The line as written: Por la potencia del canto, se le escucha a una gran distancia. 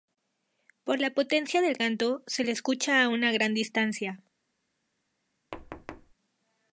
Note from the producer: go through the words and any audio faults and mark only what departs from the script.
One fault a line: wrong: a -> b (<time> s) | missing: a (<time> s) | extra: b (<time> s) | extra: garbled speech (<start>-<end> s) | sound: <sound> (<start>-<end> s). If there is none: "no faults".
sound: thud (5.5-6.1 s)